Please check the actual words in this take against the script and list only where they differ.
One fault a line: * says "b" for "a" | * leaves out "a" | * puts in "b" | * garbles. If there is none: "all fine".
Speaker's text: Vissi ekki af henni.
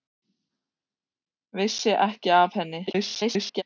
* garbles